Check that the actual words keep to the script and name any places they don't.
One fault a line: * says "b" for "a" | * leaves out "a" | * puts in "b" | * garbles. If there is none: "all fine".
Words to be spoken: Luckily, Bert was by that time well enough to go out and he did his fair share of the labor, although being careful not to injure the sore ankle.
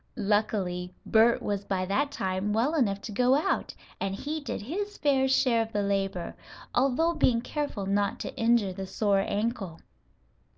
all fine